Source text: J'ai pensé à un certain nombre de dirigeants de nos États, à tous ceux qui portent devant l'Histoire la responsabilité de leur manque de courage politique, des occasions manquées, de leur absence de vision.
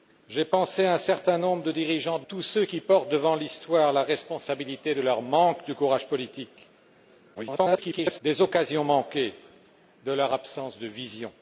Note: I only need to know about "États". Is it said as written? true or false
false